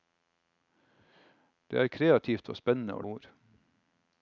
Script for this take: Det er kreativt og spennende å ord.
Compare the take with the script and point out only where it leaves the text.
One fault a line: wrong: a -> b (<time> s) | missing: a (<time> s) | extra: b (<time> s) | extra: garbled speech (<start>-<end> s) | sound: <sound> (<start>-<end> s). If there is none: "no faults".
no faults